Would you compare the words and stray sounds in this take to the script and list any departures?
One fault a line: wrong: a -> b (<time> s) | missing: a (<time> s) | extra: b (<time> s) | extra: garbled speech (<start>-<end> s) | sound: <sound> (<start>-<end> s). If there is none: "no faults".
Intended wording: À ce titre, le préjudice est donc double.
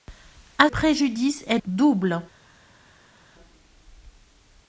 missing: ce titre le (0.7 s)
missing: donc (1.6 s)